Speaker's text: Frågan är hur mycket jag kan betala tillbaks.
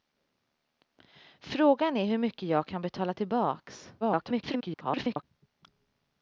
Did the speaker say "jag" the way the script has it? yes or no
yes